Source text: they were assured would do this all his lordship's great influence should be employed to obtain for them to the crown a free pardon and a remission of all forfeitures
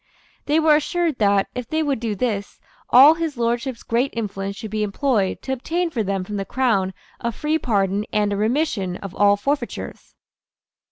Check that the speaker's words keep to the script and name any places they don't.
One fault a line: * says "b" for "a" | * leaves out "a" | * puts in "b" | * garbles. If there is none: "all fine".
* puts in "that if they"
* says "from" for "to"